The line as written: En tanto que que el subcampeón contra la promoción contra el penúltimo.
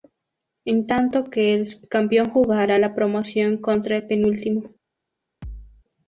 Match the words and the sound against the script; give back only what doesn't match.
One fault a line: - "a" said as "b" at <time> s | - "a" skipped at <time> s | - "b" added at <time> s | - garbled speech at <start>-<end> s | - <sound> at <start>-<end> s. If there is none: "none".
- "que" skipped at 1.5 s
- "contra" said as "jugará" at 2.3 s
- thud at 5.4-5.9 s